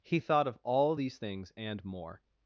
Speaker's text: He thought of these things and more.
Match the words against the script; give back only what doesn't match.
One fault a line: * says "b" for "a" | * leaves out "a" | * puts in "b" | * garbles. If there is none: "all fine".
* puts in "all"